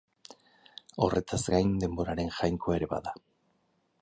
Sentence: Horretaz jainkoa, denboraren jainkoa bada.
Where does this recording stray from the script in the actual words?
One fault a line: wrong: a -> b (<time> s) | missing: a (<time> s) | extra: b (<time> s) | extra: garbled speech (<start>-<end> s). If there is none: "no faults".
wrong: jainkoa -> gain (1.5 s)
extra: ere (2.8 s)